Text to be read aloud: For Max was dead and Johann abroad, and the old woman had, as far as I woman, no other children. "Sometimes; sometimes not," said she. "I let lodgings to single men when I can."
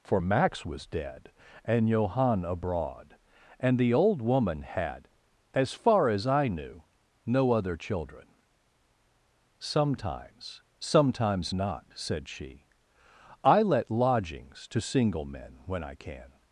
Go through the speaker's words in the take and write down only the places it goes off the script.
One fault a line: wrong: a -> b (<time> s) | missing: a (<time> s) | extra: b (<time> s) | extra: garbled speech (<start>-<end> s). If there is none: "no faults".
wrong: woman -> knew (6.5 s)